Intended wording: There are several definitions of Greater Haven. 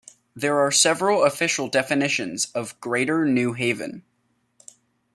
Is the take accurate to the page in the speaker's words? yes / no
no